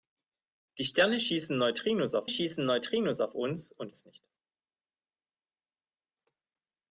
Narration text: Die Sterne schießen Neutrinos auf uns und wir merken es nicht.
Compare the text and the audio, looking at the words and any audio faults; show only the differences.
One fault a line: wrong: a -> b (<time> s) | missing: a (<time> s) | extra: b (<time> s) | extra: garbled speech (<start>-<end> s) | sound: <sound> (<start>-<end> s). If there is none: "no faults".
extra: schießen Neutrinos auf (2.3 s)
missing: wir merken (3.9 s)